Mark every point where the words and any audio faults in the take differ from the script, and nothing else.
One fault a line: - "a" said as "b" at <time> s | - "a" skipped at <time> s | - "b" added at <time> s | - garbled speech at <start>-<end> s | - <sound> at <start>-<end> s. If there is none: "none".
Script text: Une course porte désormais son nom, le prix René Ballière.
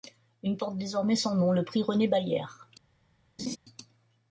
- "course" skipped at 0.6 s
- laugh at 3.4-3.6 s